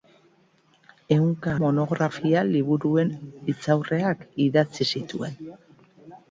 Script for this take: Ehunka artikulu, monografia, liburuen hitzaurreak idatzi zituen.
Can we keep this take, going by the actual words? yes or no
no